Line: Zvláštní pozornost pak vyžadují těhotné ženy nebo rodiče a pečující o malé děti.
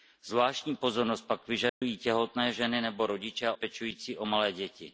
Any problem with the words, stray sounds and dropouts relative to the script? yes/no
yes